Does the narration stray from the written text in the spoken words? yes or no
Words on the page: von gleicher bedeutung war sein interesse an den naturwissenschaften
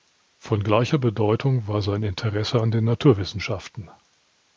no